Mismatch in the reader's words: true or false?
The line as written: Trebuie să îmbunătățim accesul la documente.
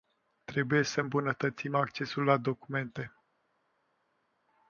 false